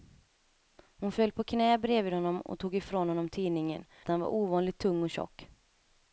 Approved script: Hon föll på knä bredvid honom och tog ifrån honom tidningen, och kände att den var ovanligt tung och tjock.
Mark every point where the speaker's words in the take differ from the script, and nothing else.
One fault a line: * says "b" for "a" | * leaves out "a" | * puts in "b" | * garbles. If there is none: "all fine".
* leaves out "och kände"